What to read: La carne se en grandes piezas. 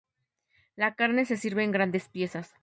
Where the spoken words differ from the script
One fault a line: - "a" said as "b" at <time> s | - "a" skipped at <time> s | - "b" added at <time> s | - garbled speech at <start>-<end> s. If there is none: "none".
- "sirve" added at 1.3 s